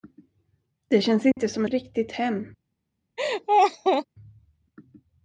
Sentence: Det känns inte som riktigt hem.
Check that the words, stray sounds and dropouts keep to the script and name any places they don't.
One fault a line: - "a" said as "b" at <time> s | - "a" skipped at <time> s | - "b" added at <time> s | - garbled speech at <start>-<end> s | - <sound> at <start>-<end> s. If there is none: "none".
- dropout at 1.3-1.4 s
- laugh at 3.2-4.0 s